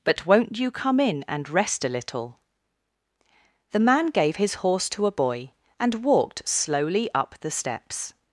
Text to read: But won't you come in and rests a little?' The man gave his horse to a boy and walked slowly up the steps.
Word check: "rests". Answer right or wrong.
wrong